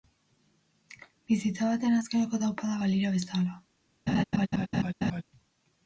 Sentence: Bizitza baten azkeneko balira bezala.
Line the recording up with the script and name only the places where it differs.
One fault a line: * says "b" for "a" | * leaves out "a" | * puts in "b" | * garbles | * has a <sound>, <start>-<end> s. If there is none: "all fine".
* puts in "taupadak"
* has a laugh, 4.1-5.2 s